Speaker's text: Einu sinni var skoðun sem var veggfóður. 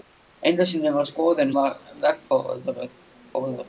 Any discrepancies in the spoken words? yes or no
yes